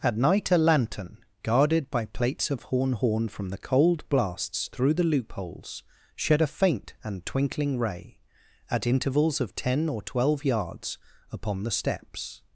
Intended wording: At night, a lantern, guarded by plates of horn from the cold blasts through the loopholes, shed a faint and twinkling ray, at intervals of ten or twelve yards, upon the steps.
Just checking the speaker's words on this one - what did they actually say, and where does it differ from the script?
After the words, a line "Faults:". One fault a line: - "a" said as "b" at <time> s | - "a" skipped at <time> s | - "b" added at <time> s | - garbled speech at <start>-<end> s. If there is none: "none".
At night, a lantern, guarded by plates of horn horn from the cold blasts through the loopholes, shed a faint and twinkling ray, at intervals of ten or twelve yards, upon the steps.
Faults:
- "horn" added at 2.9 s